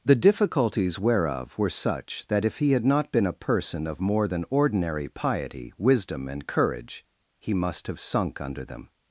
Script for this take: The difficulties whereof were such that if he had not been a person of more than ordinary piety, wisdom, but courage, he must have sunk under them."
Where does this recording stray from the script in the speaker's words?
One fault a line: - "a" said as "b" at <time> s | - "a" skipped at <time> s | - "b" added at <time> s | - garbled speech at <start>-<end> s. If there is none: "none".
- "but" said as "and" at 6.3 s